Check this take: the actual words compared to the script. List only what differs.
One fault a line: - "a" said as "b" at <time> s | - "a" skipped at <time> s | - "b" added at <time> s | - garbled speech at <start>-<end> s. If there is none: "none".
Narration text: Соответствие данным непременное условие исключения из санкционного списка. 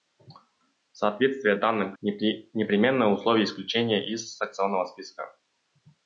none